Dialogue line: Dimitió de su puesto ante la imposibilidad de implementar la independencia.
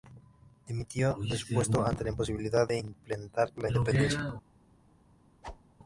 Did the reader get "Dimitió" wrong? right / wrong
right